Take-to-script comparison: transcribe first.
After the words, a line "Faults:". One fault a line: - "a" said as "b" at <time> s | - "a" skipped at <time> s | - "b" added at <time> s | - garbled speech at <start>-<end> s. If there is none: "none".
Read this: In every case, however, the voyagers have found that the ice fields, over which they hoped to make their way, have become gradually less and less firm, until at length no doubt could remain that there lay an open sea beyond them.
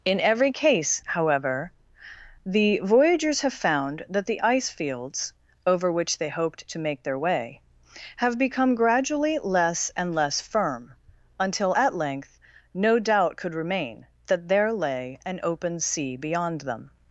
In every case, however, the voyagers have found that the ice fields, over which they hoped to make their way, have become gradually less and less firm, until at length no doubt could remain that there lay an open sea beyond them.
Faults:
none